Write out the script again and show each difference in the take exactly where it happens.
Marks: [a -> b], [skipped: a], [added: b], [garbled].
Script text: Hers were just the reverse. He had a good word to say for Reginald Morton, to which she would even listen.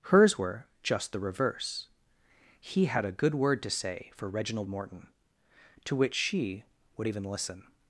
Hers were just the reverse. He had a good word to say for Reginald Morton, to which she would even listen.